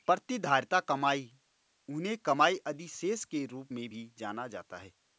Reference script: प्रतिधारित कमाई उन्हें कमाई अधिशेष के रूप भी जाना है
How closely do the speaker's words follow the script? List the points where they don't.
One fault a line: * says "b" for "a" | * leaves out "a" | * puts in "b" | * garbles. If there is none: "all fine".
* puts in "में"
* puts in "जाता"